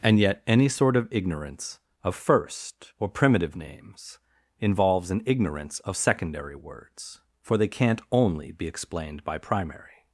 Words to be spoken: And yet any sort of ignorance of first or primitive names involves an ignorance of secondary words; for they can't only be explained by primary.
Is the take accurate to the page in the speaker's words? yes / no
yes